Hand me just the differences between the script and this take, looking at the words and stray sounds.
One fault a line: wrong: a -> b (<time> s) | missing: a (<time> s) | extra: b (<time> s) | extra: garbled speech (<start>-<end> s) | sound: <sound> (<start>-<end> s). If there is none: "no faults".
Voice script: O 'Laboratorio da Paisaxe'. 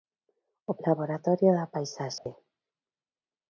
sound: dropout (2.2-2.3 s)